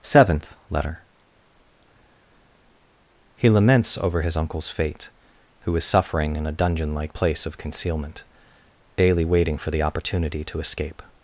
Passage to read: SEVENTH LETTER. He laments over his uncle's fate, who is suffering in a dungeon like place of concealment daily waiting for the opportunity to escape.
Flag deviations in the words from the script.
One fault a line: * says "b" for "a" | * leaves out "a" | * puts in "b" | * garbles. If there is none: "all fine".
all fine